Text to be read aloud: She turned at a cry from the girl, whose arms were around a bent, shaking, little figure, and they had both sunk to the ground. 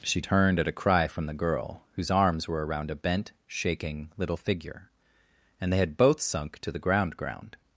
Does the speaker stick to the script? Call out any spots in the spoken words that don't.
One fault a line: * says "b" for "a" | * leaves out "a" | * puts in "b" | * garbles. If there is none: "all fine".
* puts in "ground"